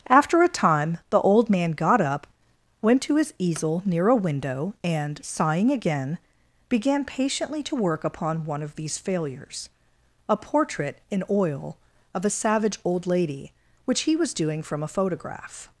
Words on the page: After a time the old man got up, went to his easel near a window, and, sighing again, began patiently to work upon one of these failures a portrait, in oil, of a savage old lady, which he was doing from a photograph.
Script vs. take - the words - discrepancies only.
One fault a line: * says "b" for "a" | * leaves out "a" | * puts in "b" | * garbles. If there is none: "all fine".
all fine